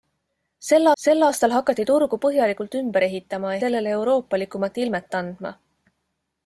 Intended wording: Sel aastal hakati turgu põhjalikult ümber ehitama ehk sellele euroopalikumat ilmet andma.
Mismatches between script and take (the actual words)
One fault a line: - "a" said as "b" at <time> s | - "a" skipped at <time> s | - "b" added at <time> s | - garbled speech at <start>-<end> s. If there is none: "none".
- "sel" added at 1.0 s
- "ehk" skipped at 3.5 s